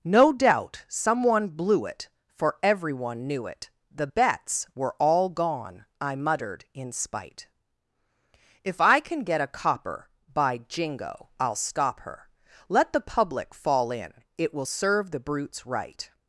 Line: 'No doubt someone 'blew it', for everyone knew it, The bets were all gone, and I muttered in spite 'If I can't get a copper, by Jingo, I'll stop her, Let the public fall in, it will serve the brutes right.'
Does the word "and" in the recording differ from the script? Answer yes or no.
yes